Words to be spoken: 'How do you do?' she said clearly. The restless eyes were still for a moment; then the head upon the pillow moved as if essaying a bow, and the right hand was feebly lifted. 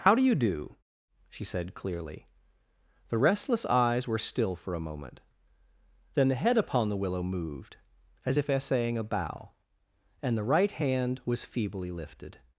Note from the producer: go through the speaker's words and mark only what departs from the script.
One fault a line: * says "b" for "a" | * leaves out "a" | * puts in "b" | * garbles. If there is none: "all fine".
* says "willow" for "pillow"